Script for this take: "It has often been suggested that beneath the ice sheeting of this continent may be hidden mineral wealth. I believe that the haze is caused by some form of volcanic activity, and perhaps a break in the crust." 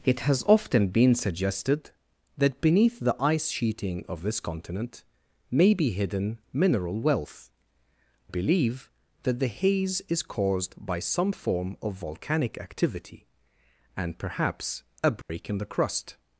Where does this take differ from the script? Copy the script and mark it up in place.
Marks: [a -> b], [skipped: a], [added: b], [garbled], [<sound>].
"It has often been suggested that beneath the ice sheeting of this continent may be hidden mineral wealth. [skipped: I] believe that the haze is caused by some form of volcanic activity, and perhaps a break [dropout] in the crust."